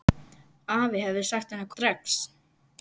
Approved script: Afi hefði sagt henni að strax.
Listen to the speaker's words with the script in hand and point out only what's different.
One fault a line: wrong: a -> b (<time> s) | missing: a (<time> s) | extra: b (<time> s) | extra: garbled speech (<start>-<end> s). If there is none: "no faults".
no faults